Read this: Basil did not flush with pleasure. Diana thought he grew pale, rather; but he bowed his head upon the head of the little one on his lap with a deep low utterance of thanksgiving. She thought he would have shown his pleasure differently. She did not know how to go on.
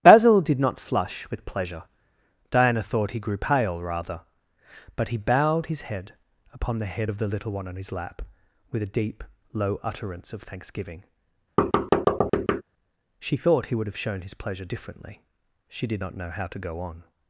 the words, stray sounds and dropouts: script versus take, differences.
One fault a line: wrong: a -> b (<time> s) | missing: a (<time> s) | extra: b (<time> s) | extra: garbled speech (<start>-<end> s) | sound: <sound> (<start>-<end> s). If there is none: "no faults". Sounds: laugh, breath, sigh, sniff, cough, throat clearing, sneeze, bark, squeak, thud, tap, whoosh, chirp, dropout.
sound: thud (11.6-12.6 s)